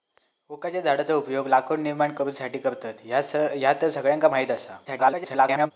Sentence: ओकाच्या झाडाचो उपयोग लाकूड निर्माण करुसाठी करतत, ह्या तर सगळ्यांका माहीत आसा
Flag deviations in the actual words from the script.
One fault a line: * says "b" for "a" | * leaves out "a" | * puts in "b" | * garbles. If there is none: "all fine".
* garbles